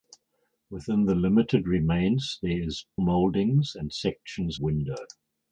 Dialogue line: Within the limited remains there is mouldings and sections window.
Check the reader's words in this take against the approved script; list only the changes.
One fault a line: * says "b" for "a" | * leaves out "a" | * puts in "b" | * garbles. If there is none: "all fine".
all fine